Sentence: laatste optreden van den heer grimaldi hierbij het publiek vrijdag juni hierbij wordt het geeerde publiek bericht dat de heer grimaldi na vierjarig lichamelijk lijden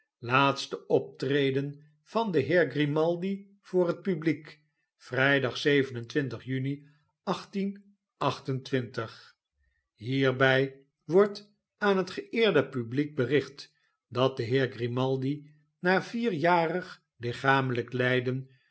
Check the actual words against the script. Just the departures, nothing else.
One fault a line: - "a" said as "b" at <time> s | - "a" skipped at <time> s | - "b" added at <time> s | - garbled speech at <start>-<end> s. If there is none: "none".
- "hierbij" said as "voor" at 3.6 s
- "aan" added at 11.8 s